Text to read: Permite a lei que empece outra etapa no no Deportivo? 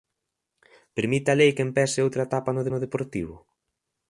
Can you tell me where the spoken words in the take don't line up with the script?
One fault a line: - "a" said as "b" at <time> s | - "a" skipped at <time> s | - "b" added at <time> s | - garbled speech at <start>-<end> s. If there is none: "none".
none